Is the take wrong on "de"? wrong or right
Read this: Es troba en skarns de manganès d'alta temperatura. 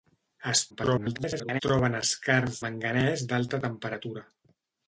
wrong